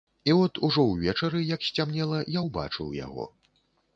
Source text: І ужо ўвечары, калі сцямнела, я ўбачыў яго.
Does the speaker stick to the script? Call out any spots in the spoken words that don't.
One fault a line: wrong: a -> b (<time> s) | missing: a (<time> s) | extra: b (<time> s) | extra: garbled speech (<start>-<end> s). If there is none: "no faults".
extra: от (0.4 s)
wrong: калі -> як (1.5 s)